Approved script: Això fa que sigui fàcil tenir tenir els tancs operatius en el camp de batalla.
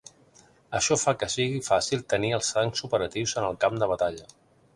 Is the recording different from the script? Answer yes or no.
yes